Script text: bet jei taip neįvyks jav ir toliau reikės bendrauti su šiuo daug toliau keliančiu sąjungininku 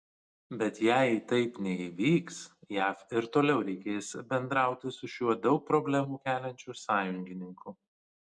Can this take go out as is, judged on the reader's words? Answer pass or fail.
fail